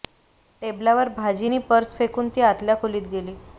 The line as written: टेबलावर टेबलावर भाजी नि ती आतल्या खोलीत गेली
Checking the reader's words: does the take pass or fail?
fail